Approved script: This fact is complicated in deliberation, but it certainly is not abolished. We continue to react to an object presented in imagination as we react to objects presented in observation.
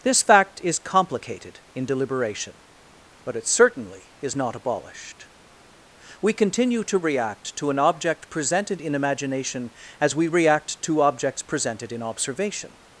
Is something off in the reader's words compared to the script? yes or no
no